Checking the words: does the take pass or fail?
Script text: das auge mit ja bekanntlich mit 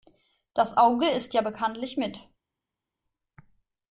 fail